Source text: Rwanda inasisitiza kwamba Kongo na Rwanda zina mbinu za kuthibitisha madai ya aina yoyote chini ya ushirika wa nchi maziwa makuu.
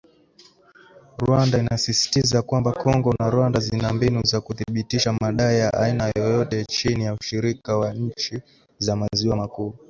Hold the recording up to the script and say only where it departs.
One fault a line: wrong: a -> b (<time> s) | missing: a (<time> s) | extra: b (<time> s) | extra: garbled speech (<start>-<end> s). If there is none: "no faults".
extra: za (8.8 s)